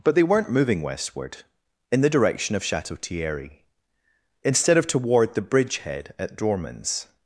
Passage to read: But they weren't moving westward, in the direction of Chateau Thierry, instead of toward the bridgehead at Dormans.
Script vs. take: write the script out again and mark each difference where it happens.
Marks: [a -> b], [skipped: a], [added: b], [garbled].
But they weren't moving westward, in the direction of Chateau Thierry, instead of toward the bridgehead at Dormans.